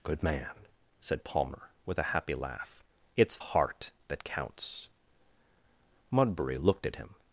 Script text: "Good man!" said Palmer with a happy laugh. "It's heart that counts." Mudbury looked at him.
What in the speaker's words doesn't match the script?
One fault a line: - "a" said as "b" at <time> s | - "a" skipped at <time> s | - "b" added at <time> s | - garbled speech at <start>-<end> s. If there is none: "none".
none